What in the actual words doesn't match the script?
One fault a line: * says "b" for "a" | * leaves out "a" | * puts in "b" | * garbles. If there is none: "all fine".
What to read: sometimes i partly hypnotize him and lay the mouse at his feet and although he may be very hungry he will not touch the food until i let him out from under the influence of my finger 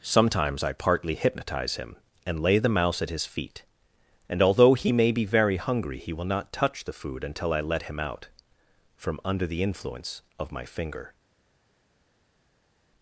all fine